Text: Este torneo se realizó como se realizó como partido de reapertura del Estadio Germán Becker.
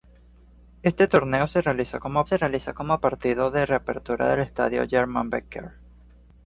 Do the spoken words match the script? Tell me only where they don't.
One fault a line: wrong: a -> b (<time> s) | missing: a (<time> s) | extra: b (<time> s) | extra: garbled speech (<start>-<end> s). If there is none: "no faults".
no faults